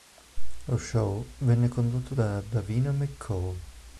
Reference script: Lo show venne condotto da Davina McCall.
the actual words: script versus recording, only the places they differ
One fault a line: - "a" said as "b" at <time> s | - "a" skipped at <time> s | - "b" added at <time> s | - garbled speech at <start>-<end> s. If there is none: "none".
none